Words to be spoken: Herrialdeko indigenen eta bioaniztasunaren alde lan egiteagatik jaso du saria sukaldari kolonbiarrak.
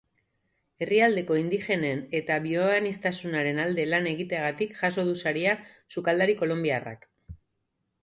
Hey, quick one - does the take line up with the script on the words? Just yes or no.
yes